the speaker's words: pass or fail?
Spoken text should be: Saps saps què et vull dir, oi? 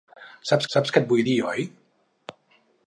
pass